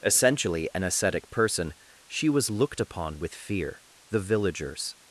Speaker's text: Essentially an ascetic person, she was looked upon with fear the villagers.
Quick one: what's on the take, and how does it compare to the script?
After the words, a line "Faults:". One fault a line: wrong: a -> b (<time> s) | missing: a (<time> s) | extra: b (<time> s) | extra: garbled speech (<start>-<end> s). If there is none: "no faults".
Essentially an ascetic person, she was looked upon with fear the villagers.
Faults:
no faults